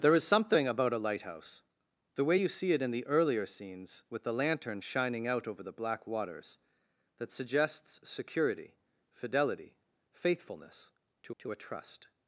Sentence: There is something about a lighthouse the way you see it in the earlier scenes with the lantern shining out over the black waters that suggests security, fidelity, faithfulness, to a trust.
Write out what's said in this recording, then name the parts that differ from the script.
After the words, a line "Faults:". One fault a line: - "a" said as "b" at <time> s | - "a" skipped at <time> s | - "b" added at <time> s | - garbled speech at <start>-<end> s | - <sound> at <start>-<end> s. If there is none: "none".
There is something about a lighthouse the way you see it in the earlier scenes with the lantern shining out over the black waters that suggests security, fidelity, faithfulness, to to a trust.
Faults:
- "to" added at 11.4 s